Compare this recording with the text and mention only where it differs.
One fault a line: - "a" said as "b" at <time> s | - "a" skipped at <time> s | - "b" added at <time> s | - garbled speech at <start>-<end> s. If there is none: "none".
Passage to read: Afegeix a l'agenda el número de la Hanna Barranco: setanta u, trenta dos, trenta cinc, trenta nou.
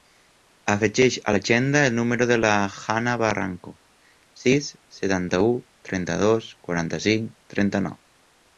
- "sis" added at 4.4 s
- "trenta" said as "quaranta" at 6.7 s